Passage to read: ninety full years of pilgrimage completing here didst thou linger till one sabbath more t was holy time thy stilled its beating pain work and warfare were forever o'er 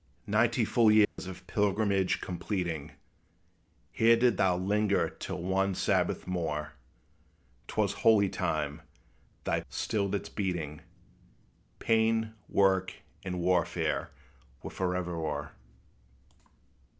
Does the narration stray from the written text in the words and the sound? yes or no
yes